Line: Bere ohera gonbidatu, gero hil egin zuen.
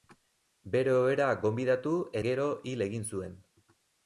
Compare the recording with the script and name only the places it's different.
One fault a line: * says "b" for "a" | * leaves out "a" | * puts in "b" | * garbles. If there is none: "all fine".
all fine